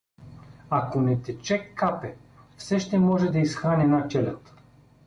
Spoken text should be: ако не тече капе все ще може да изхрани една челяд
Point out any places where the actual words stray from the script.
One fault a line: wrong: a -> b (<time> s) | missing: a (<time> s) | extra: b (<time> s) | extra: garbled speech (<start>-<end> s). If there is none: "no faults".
no faults